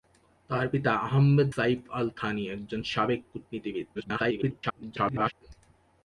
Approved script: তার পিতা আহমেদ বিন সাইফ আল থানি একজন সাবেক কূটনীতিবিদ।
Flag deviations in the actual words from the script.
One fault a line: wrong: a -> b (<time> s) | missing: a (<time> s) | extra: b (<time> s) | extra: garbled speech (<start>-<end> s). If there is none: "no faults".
missing: বিন (1.5 s)
extra: garbled speech (3.9-5.3 s)